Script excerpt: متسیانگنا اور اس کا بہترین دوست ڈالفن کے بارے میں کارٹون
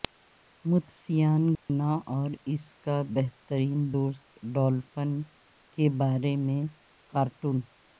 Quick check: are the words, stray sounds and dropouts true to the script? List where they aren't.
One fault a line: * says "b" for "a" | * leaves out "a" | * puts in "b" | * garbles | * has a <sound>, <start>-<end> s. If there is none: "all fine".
* has a dropout, 1.5-1.7 s